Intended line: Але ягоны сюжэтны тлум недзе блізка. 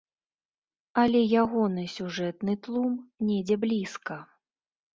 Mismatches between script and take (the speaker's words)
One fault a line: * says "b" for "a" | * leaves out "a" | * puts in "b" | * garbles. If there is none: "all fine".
all fine